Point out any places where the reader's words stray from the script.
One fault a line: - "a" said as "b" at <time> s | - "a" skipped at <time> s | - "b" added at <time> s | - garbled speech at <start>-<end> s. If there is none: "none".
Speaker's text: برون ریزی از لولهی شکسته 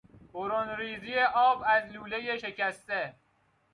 - "آب" added at 1.2 s